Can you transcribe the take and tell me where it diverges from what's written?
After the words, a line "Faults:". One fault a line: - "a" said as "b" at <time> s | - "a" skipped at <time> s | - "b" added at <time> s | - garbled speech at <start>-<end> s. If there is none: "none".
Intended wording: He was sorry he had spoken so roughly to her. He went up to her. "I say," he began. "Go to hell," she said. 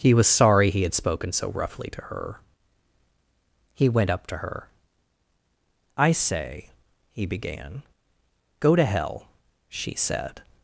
He was sorry he had spoken so roughly to her. He went up to her. "I say," he began. "Go to hell," she said.
Faults:
none